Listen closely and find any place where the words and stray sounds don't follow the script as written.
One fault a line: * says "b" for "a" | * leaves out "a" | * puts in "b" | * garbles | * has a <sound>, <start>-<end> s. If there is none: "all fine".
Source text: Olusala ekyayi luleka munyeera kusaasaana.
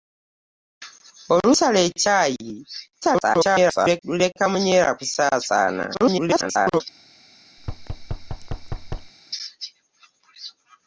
* garbles
* garbles
* has a thud, 7.6-9.1 s